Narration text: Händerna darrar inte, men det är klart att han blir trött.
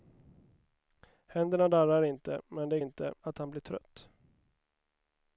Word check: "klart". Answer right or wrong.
wrong